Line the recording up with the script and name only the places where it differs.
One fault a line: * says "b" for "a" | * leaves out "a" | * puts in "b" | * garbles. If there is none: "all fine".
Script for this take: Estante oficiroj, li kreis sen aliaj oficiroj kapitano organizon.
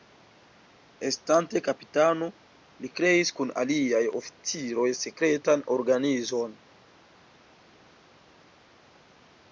* says "kapitano" for "oficiroj"
* says "kun" for "sen"
* says "sekretan" for "kapitano"